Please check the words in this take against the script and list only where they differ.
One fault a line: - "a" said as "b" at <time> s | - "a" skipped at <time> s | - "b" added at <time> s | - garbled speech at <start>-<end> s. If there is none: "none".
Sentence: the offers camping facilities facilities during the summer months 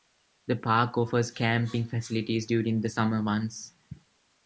- "park" added at 0.6 s
- "facilities" skipped at 2.5 s